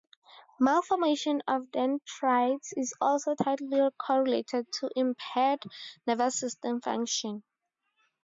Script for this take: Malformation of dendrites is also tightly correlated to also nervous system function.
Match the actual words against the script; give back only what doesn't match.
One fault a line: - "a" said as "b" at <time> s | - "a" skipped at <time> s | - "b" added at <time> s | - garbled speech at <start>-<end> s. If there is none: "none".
- "also" said as "impaired" at 4.9 s